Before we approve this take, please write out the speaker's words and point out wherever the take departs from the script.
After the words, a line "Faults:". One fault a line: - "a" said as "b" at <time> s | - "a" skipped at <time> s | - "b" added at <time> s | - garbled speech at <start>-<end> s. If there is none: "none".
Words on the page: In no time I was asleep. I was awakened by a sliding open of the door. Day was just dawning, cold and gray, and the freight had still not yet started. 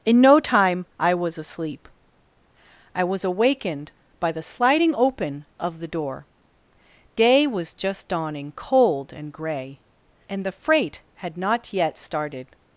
In no time I was asleep. I was awakened by the sliding open of the door. Day was just dawning, cold and gray, and the freight had not yet started.
Faults:
- "a" said as "the" at 4.3 s
- "still" skipped at 11.4 s